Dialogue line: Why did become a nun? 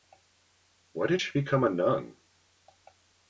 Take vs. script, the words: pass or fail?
fail